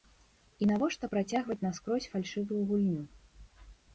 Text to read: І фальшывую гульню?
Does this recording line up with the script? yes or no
no